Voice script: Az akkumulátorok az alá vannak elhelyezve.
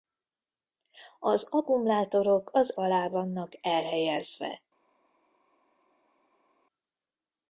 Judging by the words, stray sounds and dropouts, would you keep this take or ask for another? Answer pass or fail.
pass